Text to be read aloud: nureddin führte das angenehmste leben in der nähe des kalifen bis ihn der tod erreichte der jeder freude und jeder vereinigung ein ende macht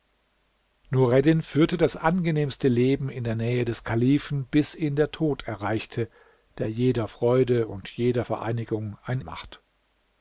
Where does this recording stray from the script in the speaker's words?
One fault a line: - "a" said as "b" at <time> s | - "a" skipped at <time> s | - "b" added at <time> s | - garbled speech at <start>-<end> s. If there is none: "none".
- "ende" skipped at 9.2 s